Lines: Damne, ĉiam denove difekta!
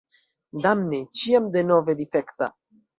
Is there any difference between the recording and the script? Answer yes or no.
no